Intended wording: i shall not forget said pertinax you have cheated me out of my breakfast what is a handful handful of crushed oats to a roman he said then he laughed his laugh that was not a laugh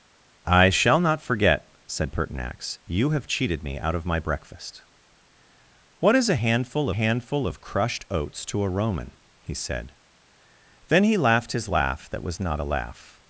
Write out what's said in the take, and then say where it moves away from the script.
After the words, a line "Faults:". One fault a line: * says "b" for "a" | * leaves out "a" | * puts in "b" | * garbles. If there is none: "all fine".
i shall not forget said pertinax you have cheated me out of my breakfast what is a handful handful of crushed oats to a roman he said then he laughed his laugh that was not a laugh
Faults:
all fine